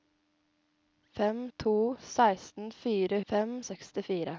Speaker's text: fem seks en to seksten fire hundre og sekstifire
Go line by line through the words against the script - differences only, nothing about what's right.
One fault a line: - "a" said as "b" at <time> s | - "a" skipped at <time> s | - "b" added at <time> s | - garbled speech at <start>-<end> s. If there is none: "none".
- "seks en" skipped at 1.5 s
- "hundre" said as "fem" at 3.3 s